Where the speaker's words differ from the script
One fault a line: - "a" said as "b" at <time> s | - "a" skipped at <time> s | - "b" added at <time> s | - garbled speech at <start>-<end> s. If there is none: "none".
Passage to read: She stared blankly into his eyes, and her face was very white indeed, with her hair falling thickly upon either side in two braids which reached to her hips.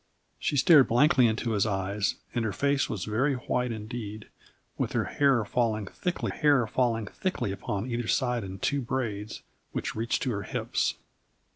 - "hair falling thickly" added at 6.3 s